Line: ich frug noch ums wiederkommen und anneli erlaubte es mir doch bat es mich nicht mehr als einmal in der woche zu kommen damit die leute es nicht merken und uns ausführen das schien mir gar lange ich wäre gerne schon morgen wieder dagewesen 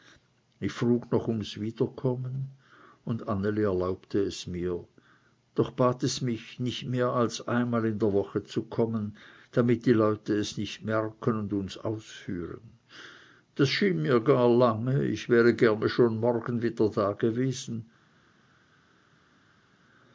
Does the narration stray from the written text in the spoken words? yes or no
no